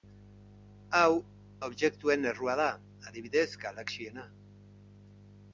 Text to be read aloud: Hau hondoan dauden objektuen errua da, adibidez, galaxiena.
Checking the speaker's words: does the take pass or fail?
fail